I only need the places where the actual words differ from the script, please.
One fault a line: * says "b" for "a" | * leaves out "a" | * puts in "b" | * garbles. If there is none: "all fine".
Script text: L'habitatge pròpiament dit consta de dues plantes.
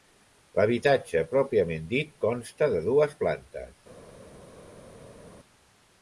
all fine